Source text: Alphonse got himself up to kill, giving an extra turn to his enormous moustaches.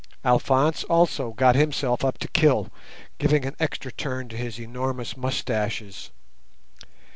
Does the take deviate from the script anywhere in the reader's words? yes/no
yes